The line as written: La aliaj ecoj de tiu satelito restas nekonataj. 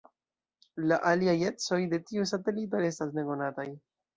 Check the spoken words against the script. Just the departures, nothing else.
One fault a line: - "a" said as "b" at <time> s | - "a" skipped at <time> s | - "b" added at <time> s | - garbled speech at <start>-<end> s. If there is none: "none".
none